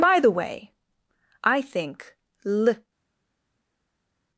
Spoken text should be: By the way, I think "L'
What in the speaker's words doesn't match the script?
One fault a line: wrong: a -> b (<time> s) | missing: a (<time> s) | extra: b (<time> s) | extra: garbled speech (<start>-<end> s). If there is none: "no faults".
no faults